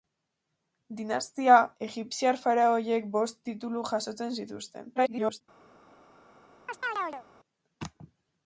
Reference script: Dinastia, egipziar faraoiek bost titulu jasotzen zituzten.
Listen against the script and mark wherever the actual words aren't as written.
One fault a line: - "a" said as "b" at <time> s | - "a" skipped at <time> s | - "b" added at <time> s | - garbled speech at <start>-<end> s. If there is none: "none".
- garbled speech at 5.0-5.4 s